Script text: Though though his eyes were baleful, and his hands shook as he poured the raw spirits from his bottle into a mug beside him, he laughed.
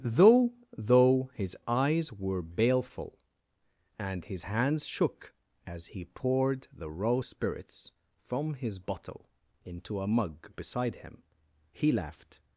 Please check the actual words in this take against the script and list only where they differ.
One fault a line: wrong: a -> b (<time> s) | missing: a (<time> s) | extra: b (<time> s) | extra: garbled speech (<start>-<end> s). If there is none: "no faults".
no faults